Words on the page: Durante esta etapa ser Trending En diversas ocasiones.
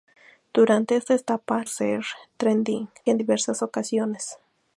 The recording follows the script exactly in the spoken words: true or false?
true